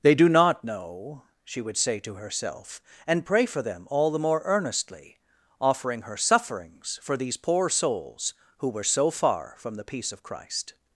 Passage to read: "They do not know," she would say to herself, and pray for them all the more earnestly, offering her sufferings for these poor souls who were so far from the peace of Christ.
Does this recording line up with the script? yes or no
yes